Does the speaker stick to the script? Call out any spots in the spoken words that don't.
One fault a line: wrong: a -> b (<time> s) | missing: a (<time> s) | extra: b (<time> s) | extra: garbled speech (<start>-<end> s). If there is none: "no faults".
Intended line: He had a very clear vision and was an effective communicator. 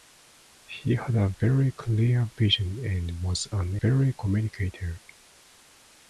wrong: effective -> very (3.8 s)